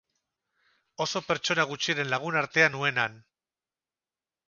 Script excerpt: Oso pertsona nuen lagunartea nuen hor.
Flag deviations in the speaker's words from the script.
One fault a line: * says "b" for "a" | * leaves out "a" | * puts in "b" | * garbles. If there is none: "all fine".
* says "gutxiren" for "nuen"
* says "han" for "hor"